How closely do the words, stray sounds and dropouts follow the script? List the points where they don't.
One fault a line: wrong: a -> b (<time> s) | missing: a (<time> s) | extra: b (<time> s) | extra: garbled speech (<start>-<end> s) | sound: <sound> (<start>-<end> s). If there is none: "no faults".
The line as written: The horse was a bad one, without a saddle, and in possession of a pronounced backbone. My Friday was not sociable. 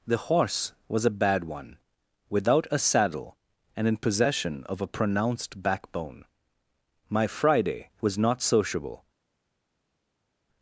no faults